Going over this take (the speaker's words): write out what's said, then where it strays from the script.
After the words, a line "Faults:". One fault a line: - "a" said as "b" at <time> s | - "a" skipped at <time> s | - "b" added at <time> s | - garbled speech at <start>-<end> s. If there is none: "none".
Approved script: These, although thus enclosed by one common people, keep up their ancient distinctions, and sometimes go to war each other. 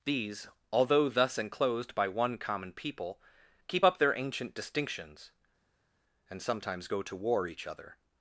These, although thus enclosed by one common people, keep up their ancient distinctions, and sometimes go to war each other.
Faults:
none